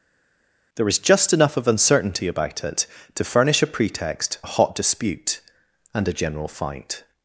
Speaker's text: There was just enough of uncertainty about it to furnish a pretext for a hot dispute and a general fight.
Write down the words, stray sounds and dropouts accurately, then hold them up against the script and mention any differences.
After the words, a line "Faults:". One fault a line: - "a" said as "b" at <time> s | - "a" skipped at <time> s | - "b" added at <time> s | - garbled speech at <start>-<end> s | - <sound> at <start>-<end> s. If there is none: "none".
There was just enough of uncertainty about it to furnish a pretext a hot dispute and a general fight.
Faults:
- "for" skipped at 4.4 s